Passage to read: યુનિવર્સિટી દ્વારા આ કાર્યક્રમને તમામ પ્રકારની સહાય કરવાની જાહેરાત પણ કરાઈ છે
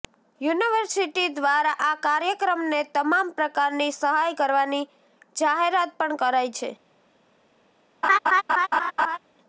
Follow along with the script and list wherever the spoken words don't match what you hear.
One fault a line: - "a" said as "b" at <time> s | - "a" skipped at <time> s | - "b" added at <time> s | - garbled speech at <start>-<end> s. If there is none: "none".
none